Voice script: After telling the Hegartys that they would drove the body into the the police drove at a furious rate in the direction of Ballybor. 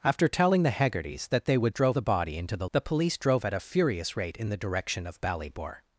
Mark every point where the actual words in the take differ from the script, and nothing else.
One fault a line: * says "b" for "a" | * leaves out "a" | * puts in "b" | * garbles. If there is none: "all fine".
all fine